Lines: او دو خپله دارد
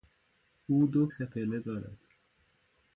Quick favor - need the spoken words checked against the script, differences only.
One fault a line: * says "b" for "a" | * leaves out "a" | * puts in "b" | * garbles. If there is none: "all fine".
all fine